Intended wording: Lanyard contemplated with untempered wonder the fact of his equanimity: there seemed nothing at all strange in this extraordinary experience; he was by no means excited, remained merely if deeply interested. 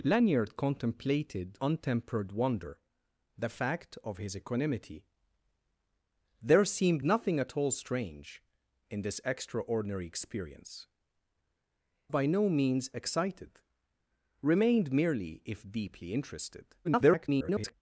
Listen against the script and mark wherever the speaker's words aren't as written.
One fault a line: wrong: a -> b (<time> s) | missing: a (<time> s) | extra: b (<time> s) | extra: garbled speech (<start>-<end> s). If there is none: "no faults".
missing: with (1.6 s)
missing: he was (10.9 s)
extra: garbled speech (16.8-17.7 s)